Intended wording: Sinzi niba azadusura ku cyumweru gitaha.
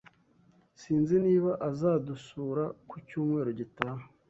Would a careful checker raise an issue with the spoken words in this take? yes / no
no